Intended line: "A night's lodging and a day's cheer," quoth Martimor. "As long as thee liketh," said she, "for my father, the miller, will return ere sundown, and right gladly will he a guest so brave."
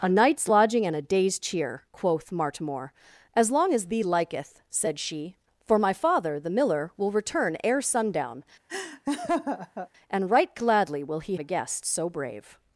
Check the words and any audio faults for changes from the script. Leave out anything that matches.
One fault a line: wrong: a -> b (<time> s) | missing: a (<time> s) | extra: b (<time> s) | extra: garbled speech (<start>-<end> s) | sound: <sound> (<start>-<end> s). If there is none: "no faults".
sound: laugh (8.7-9.9 s)